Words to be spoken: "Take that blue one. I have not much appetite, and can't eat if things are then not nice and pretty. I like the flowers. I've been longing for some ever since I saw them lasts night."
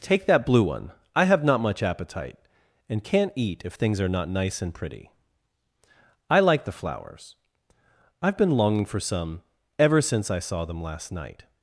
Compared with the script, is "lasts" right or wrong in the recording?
wrong